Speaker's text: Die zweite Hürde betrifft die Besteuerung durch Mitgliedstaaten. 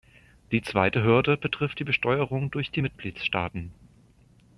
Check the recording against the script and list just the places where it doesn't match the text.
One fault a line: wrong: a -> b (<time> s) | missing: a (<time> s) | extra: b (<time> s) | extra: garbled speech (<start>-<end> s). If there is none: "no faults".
extra: die (2.7 s)